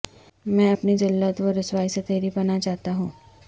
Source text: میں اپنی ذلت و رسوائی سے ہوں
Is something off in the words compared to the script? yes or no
yes